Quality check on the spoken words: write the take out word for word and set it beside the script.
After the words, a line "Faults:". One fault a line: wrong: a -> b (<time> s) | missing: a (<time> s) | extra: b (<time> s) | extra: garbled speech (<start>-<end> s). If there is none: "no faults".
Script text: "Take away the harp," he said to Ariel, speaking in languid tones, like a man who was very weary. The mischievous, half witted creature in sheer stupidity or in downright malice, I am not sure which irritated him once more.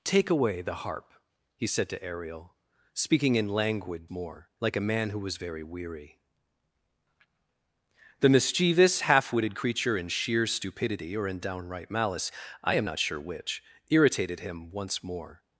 "Take away the harp," he said to Ariel, speaking in languid more, like a man who was very weary. The mischievous, half witted creature in sheer stupidity or in downright malice, I am not sure which irritated him once more.
Faults:
wrong: tones -> more (4.1 s)